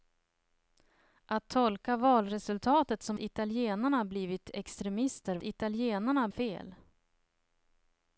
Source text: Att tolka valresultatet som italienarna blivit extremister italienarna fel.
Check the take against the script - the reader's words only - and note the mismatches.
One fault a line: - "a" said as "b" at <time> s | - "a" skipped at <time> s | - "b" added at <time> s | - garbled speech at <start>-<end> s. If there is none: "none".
none